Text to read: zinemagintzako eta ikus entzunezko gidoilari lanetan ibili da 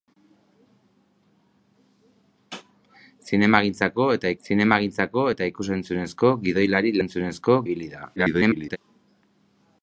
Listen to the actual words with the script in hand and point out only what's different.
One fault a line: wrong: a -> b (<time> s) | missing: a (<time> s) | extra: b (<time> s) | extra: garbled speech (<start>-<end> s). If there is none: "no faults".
extra: zinemagintzako eta (4.4 s)
wrong: lanetan -> entzunezko (7.0 s)
extra: garbled speech (8.2-8.8 s)